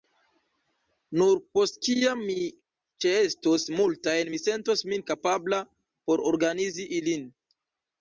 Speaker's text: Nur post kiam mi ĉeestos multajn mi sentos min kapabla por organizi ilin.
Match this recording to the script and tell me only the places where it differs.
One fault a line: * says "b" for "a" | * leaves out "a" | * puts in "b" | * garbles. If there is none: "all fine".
all fine